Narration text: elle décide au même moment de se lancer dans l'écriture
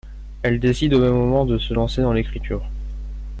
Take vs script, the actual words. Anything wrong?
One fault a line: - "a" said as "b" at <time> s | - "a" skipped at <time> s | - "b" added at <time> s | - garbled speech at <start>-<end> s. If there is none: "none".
none